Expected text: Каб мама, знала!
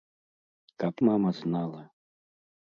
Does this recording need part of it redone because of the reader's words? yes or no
no